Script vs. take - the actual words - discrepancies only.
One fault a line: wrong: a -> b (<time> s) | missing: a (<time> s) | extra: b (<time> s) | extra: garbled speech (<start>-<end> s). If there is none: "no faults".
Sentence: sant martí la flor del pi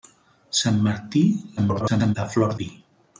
extra: garbled speech (1.6-2.2 s)
missing: del (2.6 s)